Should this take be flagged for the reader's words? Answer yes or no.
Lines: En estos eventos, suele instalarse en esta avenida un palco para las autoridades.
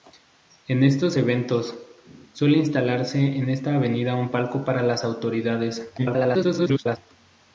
yes